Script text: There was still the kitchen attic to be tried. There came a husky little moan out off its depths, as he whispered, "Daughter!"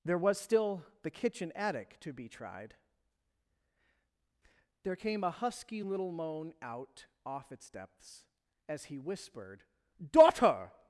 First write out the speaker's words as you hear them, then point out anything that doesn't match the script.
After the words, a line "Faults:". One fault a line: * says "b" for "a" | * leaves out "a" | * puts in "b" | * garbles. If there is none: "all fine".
There was still the kitchen attic to be tried. There came a husky little moan out off its depths, as he whispered, "Daughter!"
Faults:
all fine